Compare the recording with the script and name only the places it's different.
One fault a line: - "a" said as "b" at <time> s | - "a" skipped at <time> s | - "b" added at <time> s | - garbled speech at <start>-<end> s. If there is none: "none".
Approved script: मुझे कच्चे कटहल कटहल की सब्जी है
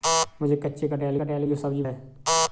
none